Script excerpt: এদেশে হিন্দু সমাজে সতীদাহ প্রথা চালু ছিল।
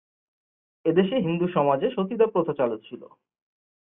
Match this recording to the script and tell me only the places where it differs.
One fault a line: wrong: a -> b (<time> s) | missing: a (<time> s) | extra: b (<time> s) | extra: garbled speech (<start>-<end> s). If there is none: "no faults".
no faults